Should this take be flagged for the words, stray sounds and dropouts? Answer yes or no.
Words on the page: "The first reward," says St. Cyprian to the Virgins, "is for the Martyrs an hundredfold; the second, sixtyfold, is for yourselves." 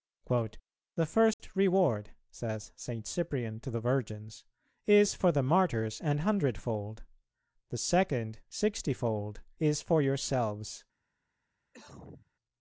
yes